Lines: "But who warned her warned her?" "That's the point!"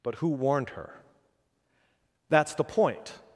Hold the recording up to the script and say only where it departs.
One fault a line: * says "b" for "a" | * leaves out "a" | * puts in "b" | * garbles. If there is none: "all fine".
* leaves out "warned her"